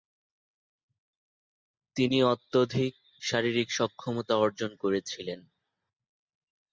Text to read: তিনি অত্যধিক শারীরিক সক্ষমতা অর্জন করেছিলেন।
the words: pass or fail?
pass